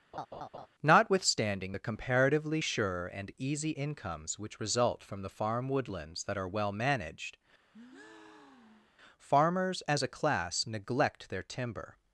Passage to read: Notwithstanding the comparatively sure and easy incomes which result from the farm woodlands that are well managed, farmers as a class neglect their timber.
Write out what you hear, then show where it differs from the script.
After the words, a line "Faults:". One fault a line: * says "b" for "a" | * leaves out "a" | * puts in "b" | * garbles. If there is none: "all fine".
Notwithstanding the comparatively sure and easy incomes which result from the farm woodlands that are well managed, farmers as a class neglect their timber.
Faults:
all fine